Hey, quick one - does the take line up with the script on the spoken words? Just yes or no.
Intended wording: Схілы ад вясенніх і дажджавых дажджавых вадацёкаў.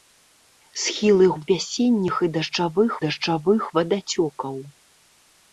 yes